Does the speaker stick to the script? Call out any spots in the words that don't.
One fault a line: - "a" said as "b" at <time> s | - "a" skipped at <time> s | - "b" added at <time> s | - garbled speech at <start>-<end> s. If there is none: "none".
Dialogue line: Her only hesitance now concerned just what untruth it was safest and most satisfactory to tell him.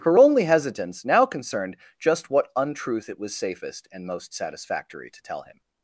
none